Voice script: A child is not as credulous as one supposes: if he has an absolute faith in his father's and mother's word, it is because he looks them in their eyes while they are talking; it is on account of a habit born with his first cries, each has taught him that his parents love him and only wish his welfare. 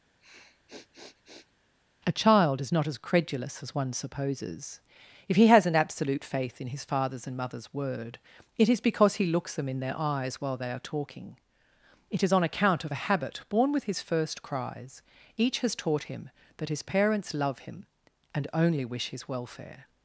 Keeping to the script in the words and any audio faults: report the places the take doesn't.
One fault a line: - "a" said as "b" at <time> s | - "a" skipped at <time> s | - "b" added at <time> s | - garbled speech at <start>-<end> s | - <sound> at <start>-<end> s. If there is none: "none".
- sniff at 0.2-1.5 s